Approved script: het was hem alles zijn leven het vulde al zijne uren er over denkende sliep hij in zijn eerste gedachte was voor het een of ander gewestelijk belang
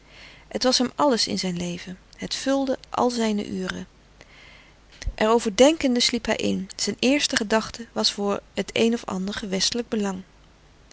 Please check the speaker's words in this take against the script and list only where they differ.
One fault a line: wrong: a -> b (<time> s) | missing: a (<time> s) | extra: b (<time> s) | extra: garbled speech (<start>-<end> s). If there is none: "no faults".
extra: in (1.3 s)